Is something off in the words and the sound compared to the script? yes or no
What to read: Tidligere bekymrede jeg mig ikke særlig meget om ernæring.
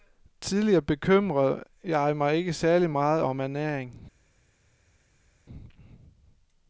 no